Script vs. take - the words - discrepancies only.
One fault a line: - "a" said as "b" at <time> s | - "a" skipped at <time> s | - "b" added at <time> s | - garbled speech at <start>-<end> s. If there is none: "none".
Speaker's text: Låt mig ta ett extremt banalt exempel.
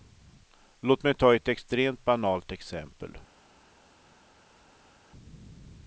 none